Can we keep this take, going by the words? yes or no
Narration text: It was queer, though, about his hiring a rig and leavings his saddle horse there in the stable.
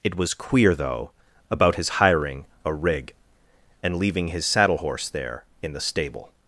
no